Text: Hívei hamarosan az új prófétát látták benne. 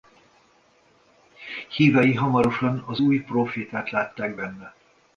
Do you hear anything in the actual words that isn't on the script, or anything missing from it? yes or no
no